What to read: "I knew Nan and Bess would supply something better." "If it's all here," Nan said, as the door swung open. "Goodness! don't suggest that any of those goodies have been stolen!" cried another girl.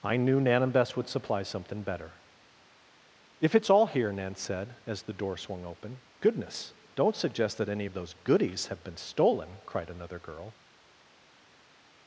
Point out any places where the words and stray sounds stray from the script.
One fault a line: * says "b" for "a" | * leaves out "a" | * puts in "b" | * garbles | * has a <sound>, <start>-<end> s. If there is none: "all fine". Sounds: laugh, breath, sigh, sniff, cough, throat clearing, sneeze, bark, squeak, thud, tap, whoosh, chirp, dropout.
all fine